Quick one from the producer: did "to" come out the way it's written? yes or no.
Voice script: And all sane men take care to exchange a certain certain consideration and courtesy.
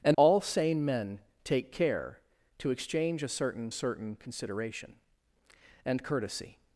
yes